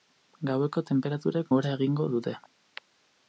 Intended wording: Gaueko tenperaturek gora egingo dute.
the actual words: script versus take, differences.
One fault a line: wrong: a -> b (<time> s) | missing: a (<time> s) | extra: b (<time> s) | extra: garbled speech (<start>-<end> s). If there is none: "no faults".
no faults